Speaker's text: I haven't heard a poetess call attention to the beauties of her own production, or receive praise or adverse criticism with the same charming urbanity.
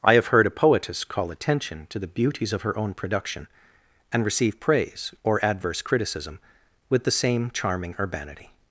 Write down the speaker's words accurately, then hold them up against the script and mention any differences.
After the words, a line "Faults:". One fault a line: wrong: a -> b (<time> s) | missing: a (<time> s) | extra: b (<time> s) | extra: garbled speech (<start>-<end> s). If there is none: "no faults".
I have heard a poetess call attention to the beauties of her own production, and receive praise or adverse criticism with the same charming urbanity.
Faults:
wrong: haven't -> have (0.1 s)
wrong: or -> and (4.1 s)